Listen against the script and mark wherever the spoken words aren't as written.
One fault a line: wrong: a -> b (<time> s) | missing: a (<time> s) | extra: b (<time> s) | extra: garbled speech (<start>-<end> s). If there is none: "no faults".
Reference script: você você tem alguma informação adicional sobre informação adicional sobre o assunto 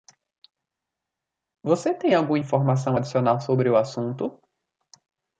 missing: você (1.9 s)
missing: informação adicional sobre (3.7 s)